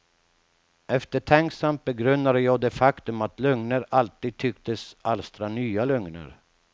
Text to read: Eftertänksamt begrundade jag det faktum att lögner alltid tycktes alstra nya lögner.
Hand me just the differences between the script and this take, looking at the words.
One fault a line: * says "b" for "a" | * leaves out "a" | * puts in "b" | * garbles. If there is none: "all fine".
all fine